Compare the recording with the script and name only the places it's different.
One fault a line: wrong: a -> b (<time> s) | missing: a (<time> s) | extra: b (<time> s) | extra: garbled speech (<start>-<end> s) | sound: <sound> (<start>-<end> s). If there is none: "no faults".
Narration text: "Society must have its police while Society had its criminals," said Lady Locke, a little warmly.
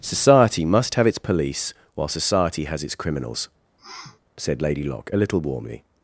wrong: had -> has (2.6 s)
sound: sniff (3.8-4.2 s)